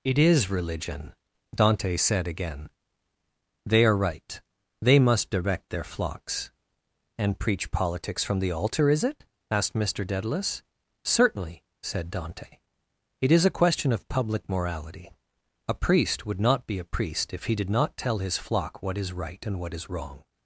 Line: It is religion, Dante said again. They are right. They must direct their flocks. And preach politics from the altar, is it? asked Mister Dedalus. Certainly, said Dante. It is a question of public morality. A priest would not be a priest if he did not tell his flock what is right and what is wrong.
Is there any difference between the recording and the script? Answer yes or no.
no